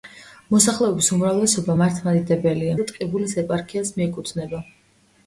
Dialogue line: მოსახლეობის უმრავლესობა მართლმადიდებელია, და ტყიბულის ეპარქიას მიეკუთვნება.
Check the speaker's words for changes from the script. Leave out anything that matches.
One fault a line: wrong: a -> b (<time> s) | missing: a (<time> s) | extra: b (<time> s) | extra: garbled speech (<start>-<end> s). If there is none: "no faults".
no faults